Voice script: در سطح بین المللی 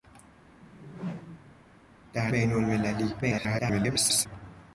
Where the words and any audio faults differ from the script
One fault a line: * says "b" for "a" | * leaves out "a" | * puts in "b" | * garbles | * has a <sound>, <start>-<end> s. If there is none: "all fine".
* has a whoosh, 0.6-1.7 s
* leaves out "سطح"
* garbles